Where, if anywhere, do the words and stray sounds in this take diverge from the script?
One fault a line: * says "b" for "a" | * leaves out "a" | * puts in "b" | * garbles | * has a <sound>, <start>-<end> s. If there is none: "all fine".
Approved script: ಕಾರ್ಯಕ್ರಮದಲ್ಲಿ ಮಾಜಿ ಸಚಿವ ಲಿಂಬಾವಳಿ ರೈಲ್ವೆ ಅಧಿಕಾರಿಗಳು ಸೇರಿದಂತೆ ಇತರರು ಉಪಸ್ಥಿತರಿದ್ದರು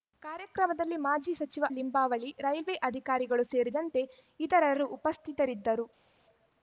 all fine